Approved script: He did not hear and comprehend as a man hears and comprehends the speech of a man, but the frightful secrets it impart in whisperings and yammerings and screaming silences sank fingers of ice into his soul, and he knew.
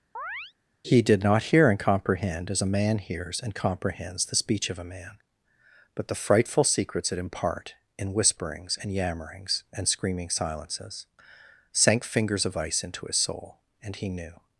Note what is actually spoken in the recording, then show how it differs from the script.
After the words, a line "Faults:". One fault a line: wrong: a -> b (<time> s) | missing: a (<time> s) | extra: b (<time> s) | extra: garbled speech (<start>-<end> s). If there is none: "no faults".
He did not hear and comprehend as a man hears and comprehends the speech of a man, but the frightful secrets it impart in whisperings and yammerings and screaming silences sank fingers of ice into his soul, and he knew.
Faults:
no faults